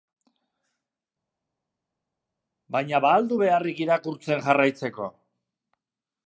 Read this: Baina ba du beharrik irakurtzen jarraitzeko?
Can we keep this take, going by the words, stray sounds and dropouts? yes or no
no